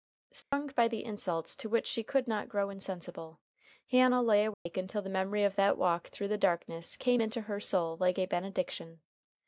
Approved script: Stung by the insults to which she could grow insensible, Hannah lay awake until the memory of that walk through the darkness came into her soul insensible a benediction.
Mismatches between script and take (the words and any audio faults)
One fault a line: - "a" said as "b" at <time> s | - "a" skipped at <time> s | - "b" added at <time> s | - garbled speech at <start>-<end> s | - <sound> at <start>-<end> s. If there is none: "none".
- dropout at 0.4-0.5 s
- "not" added at 2.3 s
- dropout at 4.5-4.7 s
- "insensible" said as "like" at 8.0 s